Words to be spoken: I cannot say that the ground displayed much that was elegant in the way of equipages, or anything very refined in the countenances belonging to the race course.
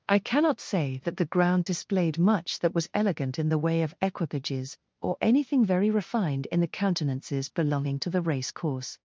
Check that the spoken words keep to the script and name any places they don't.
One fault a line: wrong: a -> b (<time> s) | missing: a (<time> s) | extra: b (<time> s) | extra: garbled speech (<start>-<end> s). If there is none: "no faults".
no faults